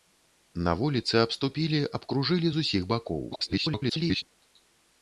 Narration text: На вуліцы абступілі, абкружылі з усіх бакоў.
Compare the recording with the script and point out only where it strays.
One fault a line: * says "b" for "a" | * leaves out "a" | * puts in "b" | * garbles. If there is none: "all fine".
* garbles